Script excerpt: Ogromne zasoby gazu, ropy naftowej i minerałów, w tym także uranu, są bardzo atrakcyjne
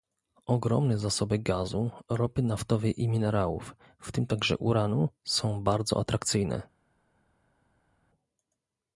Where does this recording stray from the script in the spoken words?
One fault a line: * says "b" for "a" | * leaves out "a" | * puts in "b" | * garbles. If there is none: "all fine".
all fine